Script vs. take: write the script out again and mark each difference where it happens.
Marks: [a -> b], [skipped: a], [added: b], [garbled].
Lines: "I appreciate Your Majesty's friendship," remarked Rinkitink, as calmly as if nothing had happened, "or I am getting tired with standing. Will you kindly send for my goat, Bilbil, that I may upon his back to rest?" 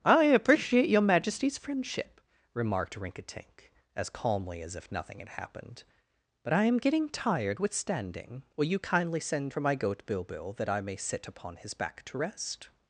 "I appreciate Your Majesty's friendship," remarked Rinkitink, as calmly as if nothing had happened, ["or -> but] I am getting tired with standing. Will you kindly send for my goat, Bilbil, that I may [added: sit] upon his back to rest?"